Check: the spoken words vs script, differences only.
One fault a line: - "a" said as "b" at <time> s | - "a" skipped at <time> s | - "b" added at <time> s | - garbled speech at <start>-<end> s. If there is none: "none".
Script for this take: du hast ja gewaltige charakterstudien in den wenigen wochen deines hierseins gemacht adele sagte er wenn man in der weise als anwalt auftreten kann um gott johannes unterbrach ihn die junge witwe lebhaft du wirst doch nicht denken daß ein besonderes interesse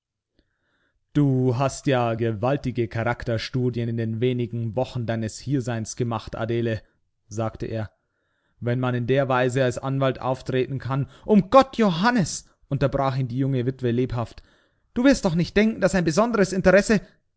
none